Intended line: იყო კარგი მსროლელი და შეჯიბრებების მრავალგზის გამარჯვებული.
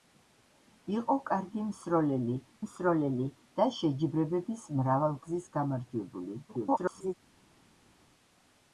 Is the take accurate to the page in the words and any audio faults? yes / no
no